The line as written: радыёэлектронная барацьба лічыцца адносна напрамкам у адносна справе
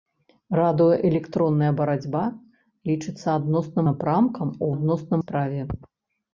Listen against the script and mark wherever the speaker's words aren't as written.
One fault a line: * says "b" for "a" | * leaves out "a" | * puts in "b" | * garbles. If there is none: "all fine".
all fine